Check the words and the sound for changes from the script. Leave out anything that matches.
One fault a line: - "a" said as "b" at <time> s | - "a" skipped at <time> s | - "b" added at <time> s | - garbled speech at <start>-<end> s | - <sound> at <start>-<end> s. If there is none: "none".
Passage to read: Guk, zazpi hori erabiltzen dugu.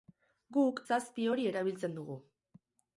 none